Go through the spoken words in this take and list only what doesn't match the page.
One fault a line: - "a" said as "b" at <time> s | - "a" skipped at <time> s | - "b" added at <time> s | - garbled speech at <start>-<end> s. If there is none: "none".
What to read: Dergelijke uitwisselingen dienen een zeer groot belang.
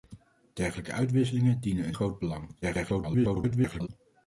- "zeer" skipped at 1.9 s
- garbled speech at 2.6-3.9 s